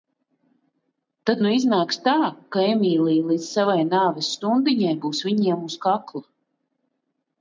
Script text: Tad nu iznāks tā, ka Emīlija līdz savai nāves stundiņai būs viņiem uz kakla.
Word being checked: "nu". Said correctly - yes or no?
yes